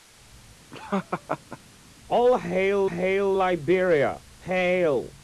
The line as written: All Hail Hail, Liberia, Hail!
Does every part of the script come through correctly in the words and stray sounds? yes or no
no